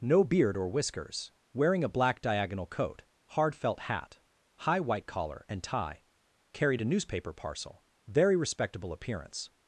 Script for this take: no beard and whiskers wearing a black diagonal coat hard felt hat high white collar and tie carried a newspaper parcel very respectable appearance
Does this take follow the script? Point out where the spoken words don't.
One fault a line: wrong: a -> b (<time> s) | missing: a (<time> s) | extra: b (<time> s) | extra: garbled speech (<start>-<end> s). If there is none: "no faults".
wrong: and -> or (0.6 s)